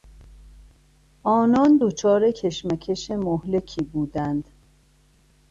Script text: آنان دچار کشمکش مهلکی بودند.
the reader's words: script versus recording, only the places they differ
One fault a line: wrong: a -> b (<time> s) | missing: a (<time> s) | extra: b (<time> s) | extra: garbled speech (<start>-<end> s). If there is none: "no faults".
no faults